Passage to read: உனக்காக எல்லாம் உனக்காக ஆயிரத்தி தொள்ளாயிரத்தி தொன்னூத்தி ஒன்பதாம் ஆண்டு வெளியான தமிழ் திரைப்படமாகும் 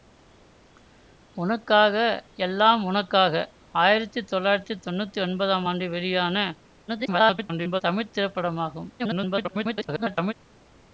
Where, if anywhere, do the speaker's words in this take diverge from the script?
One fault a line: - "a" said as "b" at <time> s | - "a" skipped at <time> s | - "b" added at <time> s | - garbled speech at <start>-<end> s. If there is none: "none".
- garbled speech at 6.9-7.8 s
- garbled speech at 9.0-10.3 s